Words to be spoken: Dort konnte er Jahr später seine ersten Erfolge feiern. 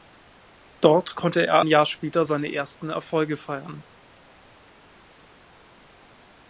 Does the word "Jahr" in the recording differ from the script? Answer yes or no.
no